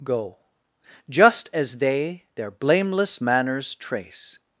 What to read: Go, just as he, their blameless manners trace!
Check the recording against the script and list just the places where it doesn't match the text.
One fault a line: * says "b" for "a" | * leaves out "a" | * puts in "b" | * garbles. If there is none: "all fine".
* says "they" for "he"